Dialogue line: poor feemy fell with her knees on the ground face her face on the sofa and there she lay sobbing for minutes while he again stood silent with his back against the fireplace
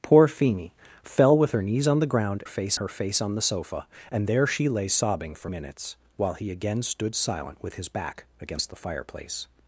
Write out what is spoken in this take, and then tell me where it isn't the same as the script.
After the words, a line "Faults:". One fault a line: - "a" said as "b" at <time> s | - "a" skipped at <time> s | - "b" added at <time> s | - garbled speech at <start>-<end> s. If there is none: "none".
poor feemy fell with her knees on the ground face her face on the sofa and there she lay sobbing for minutes while he again stood silent with his back against the fireplace
Faults:
none